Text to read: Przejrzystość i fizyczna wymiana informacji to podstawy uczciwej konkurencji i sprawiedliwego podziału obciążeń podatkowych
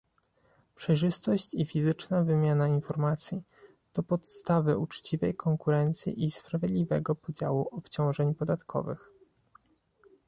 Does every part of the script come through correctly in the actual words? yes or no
yes